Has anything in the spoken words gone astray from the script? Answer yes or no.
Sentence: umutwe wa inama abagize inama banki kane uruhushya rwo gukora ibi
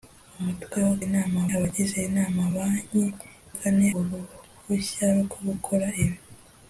no